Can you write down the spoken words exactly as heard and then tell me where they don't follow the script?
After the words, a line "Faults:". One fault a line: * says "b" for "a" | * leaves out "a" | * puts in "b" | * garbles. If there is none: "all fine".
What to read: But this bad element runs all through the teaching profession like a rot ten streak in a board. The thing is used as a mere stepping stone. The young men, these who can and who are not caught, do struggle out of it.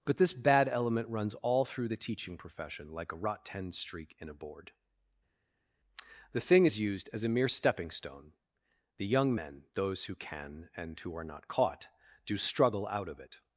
But this bad element runs all through the teaching profession like a rot ten streak in a board. The thing is used as a mere stepping stone. The young men, those who can and who are not caught, do struggle out of it.
Faults:
* says "those" for "these"